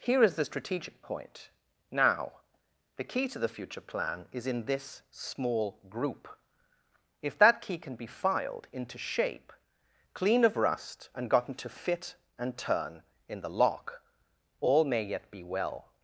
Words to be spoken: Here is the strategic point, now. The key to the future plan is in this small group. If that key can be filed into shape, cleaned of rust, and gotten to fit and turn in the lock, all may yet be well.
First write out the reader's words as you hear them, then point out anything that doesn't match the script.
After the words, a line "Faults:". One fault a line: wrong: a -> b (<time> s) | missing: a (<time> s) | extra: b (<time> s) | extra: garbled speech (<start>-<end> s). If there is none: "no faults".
Here is the strategic point, now. The key to the future plan is in this small group. If that key can be filed into shape, clean of rust, and gotten to fit and turn in the lock, all may yet be well.
Faults:
wrong: cleaned -> clean (10.1 s)